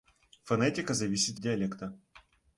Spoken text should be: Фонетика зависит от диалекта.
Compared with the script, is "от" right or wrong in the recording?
wrong